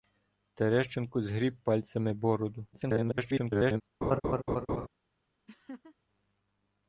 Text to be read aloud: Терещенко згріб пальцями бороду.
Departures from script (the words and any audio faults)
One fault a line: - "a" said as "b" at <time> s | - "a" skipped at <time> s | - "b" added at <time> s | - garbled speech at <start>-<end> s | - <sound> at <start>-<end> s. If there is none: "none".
- garbled speech at 2.7-3.8 s
- laugh at 4.0-4.9 s
- laugh at 5.5-6.0 s